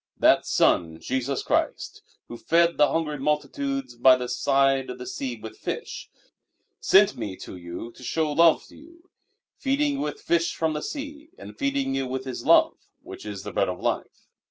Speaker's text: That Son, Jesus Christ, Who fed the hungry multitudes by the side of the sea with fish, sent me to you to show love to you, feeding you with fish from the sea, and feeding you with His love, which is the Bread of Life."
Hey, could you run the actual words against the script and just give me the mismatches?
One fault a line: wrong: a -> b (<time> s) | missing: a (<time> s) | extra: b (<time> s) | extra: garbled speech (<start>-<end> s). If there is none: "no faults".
no faults